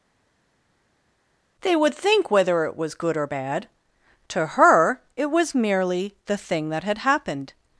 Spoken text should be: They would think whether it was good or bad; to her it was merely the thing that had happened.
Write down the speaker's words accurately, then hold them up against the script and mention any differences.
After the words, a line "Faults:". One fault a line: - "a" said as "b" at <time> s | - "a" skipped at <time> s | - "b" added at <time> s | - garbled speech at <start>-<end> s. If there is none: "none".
They would think whether it was good or bad; to her it was merely the thing that had happened.
Faults:
none